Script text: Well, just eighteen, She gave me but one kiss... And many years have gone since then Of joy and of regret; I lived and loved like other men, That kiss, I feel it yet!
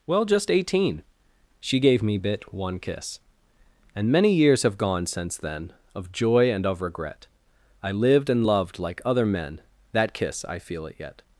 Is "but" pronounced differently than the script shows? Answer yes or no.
yes